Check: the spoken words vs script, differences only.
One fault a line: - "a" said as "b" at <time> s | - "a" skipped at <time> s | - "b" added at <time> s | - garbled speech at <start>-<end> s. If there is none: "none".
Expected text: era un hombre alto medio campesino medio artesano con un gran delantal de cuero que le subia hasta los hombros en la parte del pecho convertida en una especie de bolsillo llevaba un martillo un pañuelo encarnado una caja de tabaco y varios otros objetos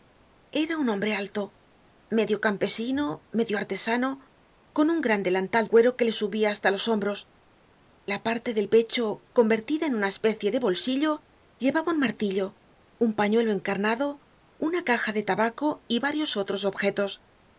- "de" skipped at 5.7 s
- "en" skipped at 7.3 s